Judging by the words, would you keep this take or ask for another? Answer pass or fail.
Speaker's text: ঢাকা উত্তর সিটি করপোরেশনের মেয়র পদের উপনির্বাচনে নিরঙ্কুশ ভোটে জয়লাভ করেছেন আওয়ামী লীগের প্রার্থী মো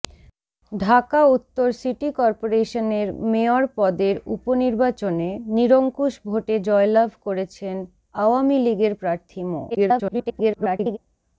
fail